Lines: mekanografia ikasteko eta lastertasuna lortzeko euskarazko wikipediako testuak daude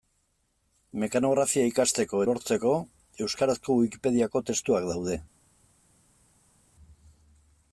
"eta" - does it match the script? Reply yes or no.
no